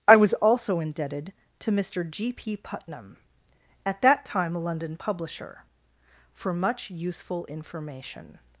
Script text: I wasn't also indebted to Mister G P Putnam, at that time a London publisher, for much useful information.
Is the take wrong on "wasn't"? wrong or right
wrong